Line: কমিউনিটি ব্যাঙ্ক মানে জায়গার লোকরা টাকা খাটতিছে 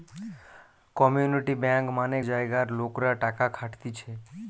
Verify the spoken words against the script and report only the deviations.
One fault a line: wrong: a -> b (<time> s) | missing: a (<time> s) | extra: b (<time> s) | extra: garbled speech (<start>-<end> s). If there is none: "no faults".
no faults